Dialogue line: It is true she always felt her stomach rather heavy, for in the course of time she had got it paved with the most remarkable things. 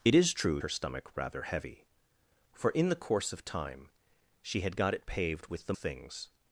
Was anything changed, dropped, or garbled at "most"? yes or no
yes